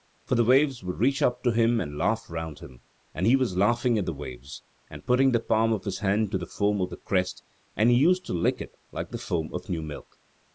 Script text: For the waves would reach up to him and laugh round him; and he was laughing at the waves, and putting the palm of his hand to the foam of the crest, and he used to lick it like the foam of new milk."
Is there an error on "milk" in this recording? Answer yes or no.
no